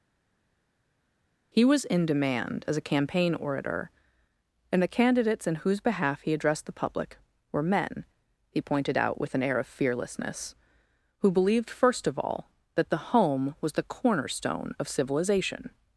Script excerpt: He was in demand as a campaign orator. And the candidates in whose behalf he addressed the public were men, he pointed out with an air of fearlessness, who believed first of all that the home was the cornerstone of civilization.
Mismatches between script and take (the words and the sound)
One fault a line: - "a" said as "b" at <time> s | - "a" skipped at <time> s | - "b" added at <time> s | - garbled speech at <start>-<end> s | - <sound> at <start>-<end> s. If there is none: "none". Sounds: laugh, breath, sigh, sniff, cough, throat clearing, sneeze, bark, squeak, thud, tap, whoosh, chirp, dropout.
none